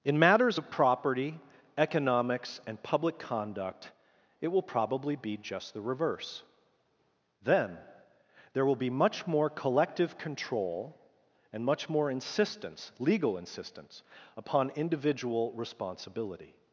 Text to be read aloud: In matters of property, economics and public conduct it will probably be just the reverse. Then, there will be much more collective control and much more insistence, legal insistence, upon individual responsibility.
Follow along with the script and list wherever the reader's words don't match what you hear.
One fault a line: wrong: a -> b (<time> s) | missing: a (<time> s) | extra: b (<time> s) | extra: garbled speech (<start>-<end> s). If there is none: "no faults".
no faults